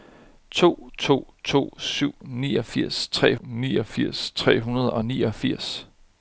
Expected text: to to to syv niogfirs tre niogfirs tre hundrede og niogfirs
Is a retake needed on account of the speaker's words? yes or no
no